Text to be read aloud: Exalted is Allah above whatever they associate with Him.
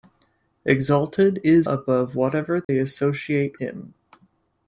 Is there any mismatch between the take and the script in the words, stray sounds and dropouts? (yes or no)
yes